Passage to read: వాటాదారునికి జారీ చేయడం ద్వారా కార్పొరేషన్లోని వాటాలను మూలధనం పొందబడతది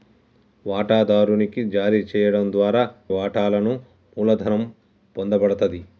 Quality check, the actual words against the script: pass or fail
fail